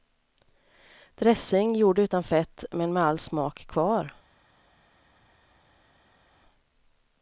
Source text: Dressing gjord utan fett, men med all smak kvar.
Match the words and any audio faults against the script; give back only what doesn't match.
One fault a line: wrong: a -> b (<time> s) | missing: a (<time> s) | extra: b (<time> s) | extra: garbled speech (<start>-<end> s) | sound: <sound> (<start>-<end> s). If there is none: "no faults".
no faults